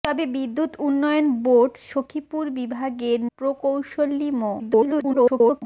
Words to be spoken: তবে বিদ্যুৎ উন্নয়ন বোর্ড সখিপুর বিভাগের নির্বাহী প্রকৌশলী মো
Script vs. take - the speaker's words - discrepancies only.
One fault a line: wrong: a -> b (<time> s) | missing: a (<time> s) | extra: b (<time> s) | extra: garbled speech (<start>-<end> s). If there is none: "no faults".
missing: নির্বাহী (3.2 s)
extra: garbled speech (4.6-5.6 s)